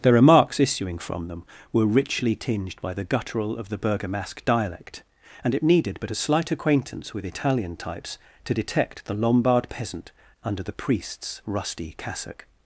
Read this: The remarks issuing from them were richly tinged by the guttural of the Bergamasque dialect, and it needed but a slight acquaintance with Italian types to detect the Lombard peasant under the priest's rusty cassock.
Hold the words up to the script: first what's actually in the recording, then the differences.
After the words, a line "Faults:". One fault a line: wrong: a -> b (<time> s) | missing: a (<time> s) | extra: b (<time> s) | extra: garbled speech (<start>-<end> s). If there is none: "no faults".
The remarks issuing from them were richly tinged by the guttural of the Bergamasque dialect, and it needed but a slight acquaintance with Italian types to detect the Lombard peasant under the priest's rusty cassock.
Faults:
no faults